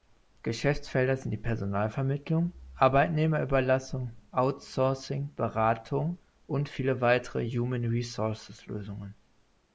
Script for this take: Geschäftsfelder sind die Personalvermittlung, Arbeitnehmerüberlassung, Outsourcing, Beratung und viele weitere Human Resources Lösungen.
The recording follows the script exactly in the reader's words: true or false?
true